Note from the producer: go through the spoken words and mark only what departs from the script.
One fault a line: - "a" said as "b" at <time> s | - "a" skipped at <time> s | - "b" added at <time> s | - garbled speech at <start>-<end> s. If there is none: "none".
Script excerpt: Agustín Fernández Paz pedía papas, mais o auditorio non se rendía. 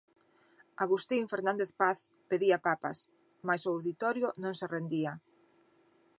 none